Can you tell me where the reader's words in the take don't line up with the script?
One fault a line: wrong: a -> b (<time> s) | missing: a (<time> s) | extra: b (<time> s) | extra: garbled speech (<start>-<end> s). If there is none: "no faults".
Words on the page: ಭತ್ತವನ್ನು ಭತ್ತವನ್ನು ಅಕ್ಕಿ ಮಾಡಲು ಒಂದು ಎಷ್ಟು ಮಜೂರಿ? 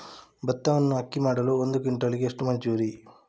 missing: ಭತ್ತವನ್ನು (0.9 s)
extra: ಕ್ವಿಂಟಾಲಿಗೆ (1.8 s)